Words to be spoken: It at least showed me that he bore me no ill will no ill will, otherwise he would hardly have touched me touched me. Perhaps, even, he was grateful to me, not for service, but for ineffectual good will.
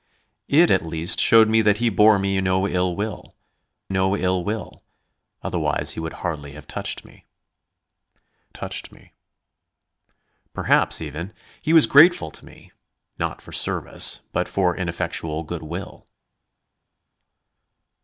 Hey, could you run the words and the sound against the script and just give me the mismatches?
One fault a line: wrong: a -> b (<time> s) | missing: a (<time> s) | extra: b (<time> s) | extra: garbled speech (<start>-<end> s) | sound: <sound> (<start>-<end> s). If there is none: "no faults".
no faults